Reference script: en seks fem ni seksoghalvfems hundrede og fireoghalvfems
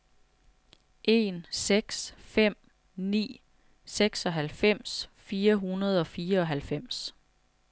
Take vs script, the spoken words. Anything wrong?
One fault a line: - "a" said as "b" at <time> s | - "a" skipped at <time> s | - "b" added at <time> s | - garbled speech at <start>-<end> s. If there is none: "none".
- "fire" added at 5.1 s